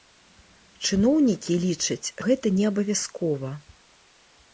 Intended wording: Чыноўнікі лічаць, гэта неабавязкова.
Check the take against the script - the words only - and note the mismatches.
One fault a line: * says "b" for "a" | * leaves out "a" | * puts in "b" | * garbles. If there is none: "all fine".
all fine